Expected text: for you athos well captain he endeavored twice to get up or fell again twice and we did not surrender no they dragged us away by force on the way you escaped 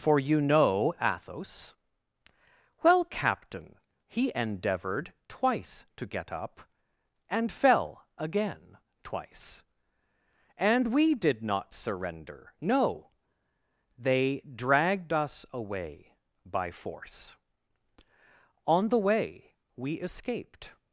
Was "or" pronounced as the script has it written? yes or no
no